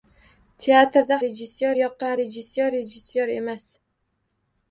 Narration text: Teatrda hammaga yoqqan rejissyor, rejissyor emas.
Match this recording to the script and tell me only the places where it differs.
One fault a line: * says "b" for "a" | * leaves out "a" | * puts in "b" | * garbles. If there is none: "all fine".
* says "rejissyor" for "hammaga"